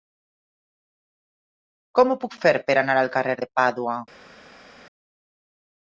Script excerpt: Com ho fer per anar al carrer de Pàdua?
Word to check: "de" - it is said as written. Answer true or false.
true